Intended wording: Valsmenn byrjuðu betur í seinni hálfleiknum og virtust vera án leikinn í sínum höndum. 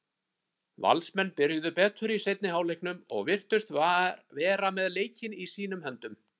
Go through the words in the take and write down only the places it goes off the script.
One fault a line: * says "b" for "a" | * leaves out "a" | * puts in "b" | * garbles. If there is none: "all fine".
* says "með" for "án"